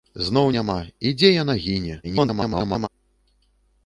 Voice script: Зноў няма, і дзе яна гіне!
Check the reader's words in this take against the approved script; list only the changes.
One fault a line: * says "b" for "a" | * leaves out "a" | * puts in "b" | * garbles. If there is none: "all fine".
* garbles